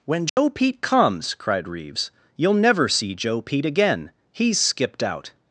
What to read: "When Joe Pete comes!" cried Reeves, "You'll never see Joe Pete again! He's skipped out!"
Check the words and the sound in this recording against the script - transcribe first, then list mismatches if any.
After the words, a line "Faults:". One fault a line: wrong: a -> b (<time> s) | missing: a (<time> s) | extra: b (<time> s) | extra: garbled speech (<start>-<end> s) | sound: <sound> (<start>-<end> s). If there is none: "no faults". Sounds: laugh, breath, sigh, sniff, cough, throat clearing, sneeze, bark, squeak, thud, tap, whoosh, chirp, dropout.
"When Joe Pete comes!" cried Reeves, "You'll never see Joe Pete again! He's skipped out!"
Faults:
sound: dropout (0.3-0.4 s)